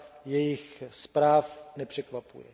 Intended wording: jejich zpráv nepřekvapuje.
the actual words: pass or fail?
pass